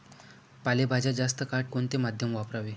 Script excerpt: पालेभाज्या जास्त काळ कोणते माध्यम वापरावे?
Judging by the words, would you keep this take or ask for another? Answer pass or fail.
pass